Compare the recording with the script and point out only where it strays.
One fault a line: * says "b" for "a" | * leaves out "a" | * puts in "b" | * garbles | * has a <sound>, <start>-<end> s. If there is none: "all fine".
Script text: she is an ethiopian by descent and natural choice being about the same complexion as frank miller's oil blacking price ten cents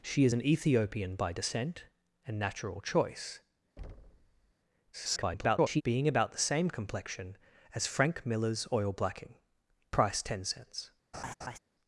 * has a thud, 3.8-4.5 s
* garbles
* has a laugh, 11.1-11.6 s